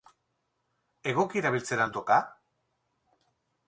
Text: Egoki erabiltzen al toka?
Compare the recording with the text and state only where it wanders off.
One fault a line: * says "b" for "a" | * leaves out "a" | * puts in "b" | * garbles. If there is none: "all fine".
all fine